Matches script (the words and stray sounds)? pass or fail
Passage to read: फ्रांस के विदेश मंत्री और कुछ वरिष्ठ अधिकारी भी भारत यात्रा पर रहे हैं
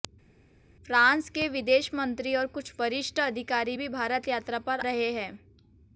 pass